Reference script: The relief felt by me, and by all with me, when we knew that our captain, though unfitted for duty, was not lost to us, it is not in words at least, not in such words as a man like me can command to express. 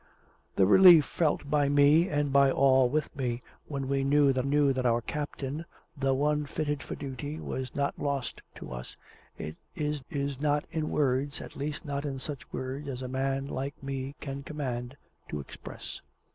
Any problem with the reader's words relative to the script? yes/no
yes